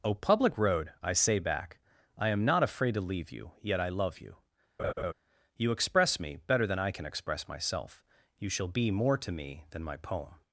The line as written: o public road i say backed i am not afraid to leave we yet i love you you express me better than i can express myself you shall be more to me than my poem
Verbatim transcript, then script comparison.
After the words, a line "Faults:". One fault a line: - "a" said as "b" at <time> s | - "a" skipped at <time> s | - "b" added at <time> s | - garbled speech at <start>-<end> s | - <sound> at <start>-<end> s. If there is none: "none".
o public road i say back i am not afraid to leave you yet i love you you express me better than i can express myself you shall be more to me than my poem
Faults:
- "backed" said as "back" at 1.4 s
- "we" said as "you" at 3.3 s
- laugh at 4.8-5.1 s